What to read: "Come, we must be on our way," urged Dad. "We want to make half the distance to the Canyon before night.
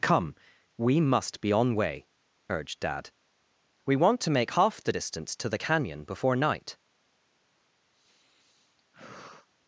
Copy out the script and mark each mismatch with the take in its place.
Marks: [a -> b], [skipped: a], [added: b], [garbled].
"Come, we must be on [skipped: our] way," urged Dad. "We want to make half the distance to the Canyon before night.